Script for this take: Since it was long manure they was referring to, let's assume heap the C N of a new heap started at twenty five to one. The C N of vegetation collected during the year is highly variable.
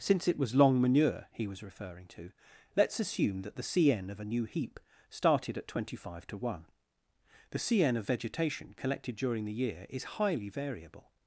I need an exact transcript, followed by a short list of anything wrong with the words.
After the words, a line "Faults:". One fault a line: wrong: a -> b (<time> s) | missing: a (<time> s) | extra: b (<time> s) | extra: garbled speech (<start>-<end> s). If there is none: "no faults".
Since it was long manure he was referring to, let's assume that the C N of a new heap started at twenty five to one. The C N of vegetation collected during the year is highly variable.
Faults:
wrong: they -> he (1.3 s)
wrong: heap -> that (3.4 s)